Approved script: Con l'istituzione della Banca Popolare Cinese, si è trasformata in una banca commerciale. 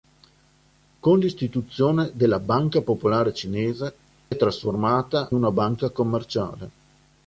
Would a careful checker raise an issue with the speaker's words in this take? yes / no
yes